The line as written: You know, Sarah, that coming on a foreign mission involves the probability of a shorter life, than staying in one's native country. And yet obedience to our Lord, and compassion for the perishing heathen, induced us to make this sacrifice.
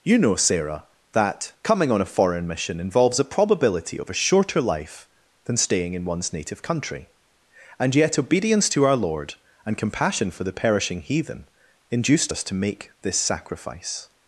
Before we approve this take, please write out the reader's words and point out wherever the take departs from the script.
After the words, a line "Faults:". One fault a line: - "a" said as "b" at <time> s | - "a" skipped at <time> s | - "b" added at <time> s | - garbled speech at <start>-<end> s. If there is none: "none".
You know, Sarah, that coming on a foreign mission involves a probability of a shorter life, than staying in one's native country. And yet obedience to our Lord, and compassion for the perishing heathen, induced us to make this sacrifice.
Faults:
- "the" said as "a" at 3.2 s